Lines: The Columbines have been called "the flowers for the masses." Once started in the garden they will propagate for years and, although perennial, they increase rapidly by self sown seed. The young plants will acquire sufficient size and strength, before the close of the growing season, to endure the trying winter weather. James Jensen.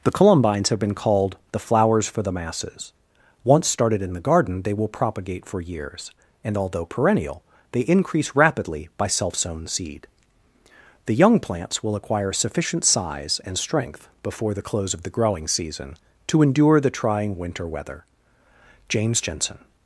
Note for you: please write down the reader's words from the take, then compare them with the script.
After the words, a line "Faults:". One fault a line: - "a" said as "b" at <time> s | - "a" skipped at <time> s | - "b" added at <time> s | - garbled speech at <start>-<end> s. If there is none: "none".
The Columbines have been called "the flowers for the masses." Once started in the garden they will propagate for years and, although perennial, they increase rapidly by self sown seed. The young plants will acquire sufficient size and strength, before the close of the growing season, to endure the trying winter weather. James Jensen.
Faults:
none